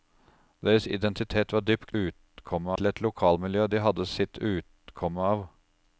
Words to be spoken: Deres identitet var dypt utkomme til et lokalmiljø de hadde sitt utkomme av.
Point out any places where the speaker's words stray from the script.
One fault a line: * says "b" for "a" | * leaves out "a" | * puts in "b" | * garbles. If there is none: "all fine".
all fine